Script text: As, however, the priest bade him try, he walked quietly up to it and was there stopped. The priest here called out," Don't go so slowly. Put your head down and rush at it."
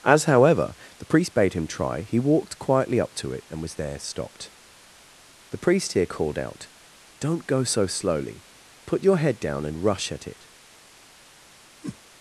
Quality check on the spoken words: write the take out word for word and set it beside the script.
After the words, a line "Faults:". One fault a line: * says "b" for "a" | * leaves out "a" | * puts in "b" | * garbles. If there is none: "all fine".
As, however, the priest bade him try, he walked quietly up to it and was there stopped. The priest here called out," Don't go so slowly. Put your head down and rush at it."
Faults:
all fine